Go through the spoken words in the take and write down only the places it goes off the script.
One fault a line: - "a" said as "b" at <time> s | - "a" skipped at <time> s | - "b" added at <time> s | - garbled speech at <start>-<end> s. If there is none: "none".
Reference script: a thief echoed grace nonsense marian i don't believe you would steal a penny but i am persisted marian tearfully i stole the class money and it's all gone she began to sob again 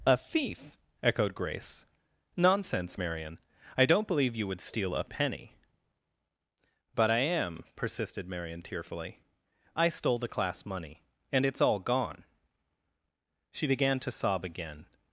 none